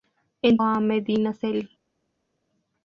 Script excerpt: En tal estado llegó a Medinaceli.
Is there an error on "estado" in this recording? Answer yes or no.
yes